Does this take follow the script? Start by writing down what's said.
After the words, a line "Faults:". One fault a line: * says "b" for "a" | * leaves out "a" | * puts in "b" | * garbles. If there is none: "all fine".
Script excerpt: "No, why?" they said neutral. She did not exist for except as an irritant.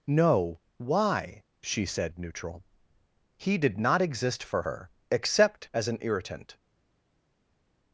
"No, why?" she said neutral. He did not exist for her, except as an irritant.
Faults:
* says "she" for "they"
* says "He" for "She"
* puts in "her"